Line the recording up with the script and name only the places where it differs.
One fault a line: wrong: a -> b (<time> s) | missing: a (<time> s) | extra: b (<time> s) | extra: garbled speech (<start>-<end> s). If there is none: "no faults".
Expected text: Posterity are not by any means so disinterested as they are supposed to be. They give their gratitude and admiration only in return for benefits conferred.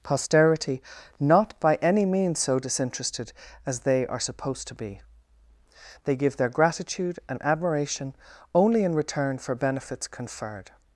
missing: are (0.8 s)